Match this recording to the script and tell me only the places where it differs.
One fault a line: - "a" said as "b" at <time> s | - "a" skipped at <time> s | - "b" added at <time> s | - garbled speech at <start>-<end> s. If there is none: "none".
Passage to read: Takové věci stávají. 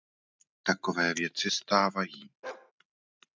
none